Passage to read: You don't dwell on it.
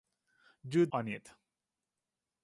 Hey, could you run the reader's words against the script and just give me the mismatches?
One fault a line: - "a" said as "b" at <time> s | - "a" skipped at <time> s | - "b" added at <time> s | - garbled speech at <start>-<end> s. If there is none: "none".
- "don't dwell" skipped at 0.9 s